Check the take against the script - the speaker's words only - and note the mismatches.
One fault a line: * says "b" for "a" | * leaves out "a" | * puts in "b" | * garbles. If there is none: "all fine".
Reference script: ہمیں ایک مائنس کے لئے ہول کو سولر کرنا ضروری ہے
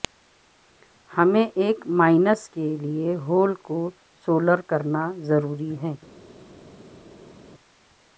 all fine